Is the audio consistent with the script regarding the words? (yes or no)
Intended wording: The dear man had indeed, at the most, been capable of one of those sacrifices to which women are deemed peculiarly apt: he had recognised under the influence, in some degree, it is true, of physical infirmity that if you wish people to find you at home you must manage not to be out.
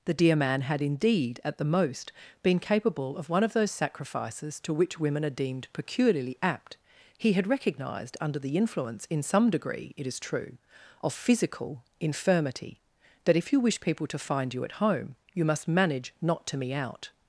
no